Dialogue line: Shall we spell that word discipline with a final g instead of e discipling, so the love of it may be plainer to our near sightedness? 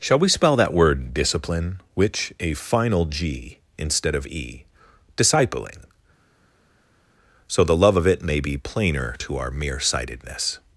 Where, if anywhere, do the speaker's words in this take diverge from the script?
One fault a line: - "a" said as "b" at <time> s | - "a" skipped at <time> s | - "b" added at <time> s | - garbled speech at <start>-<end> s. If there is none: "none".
- "with" said as "which" at 1.9 s
- "near" said as "mere" at 9.5 s